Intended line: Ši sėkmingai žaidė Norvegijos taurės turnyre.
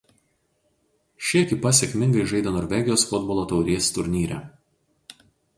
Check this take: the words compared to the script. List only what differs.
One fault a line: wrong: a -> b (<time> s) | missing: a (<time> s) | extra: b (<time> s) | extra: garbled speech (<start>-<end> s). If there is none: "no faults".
extra: ekipa (1.4 s)
extra: futbolo (3.1 s)